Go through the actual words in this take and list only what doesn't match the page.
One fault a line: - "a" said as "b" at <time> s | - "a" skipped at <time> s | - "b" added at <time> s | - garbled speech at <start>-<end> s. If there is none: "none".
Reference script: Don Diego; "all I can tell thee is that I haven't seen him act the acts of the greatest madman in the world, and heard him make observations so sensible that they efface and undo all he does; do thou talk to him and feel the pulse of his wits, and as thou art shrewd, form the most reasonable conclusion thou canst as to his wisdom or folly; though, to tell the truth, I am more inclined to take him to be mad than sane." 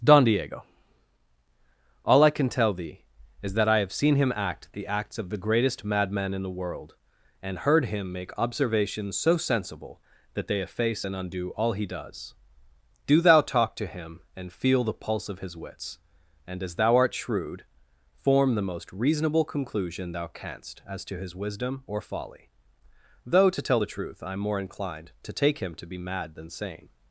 - "haven't" said as "have" at 3.8 s